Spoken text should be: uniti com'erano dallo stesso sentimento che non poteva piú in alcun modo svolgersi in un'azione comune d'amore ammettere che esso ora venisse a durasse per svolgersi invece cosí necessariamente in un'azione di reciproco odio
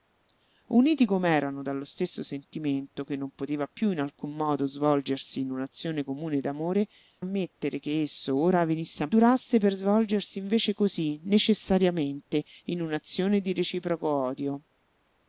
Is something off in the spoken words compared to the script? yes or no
no